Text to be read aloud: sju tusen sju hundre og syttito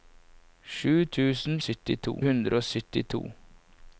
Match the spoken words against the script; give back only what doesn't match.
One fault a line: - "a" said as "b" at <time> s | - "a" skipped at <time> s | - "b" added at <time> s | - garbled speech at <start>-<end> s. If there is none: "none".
- "sju" said as "syttito" at 1.6 s